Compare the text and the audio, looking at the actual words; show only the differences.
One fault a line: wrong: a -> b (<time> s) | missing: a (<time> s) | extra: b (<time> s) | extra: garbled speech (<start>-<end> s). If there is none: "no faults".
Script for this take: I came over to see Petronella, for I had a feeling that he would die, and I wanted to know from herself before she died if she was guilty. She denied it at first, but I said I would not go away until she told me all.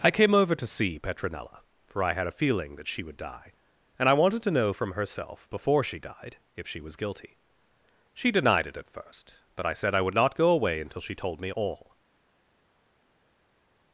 wrong: he -> she (2.9 s)